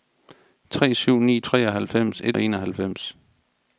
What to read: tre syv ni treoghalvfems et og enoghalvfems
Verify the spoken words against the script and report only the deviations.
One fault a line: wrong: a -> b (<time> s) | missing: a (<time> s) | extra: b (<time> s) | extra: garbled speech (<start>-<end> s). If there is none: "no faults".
no faults